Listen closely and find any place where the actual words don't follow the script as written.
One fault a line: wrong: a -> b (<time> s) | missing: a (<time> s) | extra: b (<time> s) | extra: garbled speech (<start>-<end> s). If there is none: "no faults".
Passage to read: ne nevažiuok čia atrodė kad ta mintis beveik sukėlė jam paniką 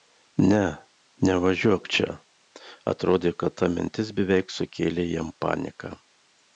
no faults